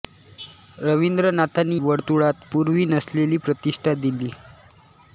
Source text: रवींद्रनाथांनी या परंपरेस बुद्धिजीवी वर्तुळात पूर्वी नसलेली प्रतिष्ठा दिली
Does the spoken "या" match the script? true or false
false